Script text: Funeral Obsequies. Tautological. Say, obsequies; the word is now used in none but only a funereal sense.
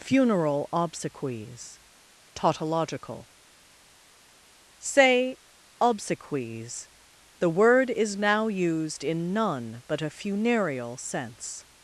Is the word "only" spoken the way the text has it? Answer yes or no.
no